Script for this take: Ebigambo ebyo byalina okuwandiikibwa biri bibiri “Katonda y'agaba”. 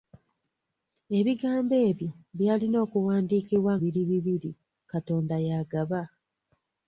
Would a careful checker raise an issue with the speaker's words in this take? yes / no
no